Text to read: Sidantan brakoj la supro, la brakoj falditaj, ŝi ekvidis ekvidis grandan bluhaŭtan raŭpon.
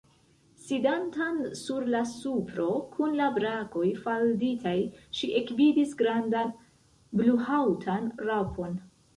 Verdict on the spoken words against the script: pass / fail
fail